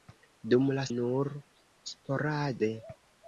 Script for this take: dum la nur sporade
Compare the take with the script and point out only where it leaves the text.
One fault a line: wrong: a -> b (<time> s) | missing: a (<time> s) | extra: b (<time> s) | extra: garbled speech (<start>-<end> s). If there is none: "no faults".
no faults